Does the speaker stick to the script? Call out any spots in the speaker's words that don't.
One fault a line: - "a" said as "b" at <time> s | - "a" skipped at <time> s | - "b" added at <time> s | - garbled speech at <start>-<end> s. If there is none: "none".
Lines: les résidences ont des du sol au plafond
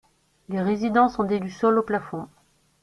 none